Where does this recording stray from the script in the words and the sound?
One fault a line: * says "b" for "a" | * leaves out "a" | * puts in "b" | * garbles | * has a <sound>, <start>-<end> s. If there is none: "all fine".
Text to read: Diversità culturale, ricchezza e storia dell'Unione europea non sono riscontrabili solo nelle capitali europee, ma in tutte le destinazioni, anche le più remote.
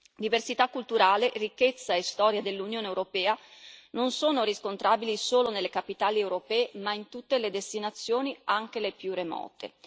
all fine